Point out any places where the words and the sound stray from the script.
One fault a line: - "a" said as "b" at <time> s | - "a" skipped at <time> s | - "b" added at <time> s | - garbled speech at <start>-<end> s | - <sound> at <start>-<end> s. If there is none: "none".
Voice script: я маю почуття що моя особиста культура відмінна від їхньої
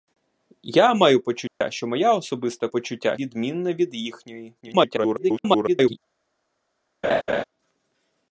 - dropout at 1.5-1.6 s
- "культура" said as "почуття" at 2.7 s
- garbled speech at 4.6-6.0 s
- laugh at 7.0-7.4 s